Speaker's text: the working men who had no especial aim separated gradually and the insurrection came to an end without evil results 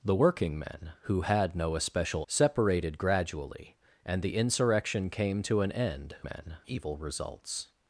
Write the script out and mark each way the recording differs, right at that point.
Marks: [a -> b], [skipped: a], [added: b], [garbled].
the working men who had no especial [skipped: aim] separated gradually and the insurrection came to an end [without -> men] evil results